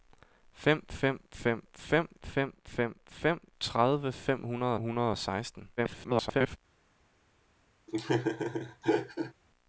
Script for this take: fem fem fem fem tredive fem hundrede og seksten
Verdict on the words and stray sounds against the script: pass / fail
fail